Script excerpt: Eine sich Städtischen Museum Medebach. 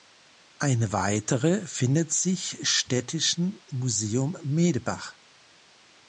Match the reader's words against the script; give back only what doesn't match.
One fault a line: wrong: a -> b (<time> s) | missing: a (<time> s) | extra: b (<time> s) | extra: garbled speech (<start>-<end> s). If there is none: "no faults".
extra: weitere findet (0.9 s)